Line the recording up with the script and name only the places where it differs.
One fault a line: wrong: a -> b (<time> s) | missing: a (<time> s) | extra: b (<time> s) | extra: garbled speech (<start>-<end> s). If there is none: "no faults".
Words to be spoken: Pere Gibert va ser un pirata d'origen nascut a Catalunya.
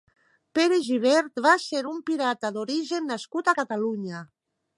no faults